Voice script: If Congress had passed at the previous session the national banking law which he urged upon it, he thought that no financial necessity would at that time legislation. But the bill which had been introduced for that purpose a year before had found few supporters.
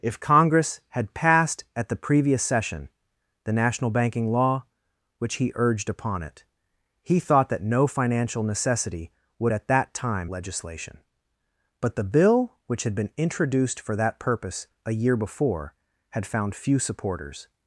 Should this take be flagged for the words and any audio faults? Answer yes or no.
no